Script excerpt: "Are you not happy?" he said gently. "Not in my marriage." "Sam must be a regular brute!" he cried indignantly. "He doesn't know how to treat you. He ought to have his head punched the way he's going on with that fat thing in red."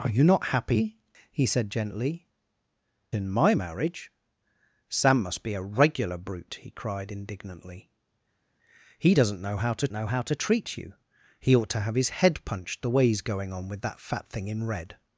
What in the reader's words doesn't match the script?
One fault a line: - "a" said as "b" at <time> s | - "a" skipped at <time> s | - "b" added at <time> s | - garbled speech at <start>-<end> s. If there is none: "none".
- "Not" skipped at 2.2 s
- "know how to" added at 9.9 s